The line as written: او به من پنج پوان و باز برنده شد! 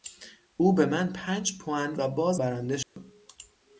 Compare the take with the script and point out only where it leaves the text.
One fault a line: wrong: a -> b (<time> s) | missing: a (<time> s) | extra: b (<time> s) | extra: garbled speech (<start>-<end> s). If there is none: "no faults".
no faults